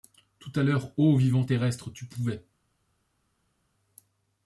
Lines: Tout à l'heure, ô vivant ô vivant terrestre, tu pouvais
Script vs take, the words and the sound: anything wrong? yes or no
yes